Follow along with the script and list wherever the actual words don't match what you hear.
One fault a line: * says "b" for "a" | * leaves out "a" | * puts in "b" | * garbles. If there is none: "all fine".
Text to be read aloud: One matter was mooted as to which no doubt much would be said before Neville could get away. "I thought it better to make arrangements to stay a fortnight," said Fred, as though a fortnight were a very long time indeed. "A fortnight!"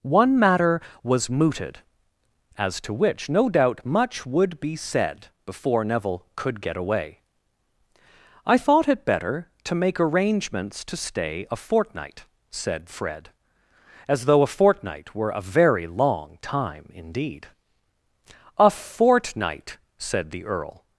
* puts in "said the Earl"